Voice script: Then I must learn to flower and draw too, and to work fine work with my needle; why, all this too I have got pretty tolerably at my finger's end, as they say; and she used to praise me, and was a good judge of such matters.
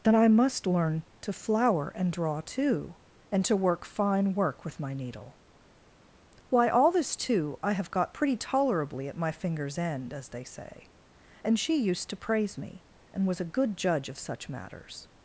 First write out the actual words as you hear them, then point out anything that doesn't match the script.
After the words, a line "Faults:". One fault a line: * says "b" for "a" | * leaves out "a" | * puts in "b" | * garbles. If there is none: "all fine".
Then I must learn to flower and draw too, and to work fine work with my needle; why, all this too I have got pretty tolerably at my finger's end, as they say; and she used to praise me, and was a good judge of such matters.
Faults:
all fine